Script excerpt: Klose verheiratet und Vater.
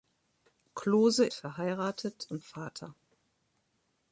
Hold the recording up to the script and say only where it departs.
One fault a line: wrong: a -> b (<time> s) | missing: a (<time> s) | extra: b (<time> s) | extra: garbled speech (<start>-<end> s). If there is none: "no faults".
no faults